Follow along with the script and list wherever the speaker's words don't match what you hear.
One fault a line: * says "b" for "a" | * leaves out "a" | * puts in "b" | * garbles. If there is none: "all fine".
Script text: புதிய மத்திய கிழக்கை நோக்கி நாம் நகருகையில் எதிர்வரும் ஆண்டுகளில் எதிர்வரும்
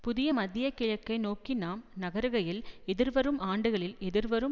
all fine